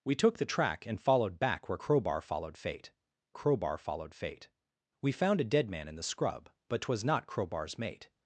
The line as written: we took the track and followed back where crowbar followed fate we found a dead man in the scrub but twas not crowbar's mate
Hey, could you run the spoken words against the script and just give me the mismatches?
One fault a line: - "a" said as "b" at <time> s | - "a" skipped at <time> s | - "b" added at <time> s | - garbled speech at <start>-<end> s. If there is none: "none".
- "crowbar followed fate" added at 3.3 s